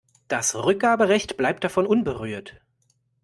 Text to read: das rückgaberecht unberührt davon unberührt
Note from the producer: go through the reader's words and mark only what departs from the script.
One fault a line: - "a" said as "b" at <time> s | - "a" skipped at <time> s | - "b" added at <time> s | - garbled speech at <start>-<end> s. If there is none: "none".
- "unberührt" said as "bleibt" at 1.4 s